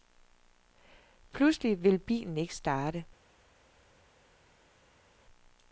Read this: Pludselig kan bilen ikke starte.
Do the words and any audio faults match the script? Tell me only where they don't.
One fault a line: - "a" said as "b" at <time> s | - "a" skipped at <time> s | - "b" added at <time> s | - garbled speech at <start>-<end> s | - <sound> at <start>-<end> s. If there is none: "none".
- "kan" said as "vil" at 1.8 s